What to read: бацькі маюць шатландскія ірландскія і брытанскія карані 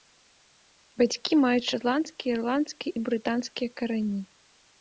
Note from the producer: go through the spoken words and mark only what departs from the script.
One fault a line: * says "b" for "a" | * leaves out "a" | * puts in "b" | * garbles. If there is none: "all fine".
all fine